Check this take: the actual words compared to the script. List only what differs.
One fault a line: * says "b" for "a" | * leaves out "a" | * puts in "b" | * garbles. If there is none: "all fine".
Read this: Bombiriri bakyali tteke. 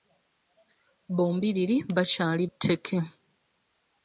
all fine